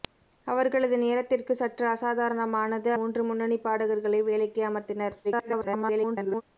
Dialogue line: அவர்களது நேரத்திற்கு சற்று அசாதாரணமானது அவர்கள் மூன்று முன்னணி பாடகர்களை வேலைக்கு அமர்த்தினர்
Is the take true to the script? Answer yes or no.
no